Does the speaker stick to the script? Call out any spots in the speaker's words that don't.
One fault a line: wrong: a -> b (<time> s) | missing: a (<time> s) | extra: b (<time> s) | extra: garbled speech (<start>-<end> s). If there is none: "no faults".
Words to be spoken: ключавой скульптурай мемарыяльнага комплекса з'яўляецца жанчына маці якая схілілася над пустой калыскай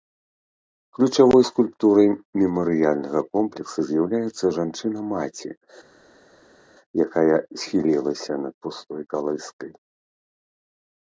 no faults